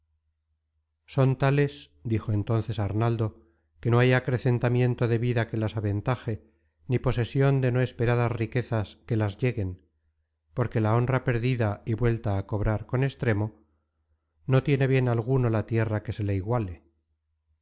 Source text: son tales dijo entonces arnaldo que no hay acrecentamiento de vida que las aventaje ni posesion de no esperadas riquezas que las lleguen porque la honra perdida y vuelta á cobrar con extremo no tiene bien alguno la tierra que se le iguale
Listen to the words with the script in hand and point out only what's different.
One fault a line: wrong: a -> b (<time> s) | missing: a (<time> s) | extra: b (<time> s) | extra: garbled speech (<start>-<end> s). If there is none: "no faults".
no faults